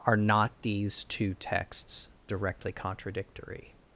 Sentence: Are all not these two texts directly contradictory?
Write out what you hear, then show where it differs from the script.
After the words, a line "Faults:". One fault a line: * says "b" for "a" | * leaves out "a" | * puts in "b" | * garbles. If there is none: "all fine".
Are not these two texts directly contradictory?
Faults:
* leaves out "all"